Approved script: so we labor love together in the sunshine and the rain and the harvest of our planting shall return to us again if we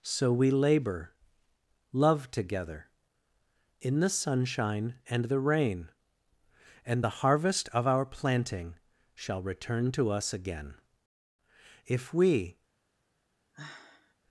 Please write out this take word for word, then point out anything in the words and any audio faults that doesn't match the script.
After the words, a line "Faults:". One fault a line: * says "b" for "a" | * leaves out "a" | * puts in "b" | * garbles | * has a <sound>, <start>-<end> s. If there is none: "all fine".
so we labor love together in the sunshine and the rain and the harvest of our planting shall return to us again if we
Faults:
* has a sigh, 13.5-14.2 s